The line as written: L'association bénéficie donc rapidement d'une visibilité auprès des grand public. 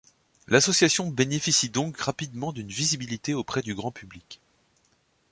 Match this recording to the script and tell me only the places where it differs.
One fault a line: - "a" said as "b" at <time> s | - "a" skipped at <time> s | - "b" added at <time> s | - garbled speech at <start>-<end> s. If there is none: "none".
- "des" said as "du" at 3.6 s